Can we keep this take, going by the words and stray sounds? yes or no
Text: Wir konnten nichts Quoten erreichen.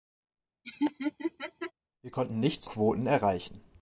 no